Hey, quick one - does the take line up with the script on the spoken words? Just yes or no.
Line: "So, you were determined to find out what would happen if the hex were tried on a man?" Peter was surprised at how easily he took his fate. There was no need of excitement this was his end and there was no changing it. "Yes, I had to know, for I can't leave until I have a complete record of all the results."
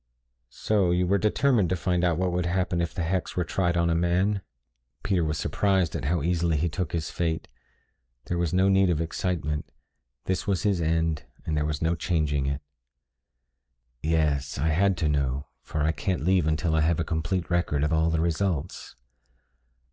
yes